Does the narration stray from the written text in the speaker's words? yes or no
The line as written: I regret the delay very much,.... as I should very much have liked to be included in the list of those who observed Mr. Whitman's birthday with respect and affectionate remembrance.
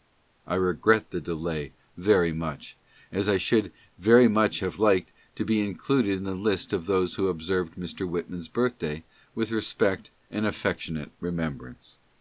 no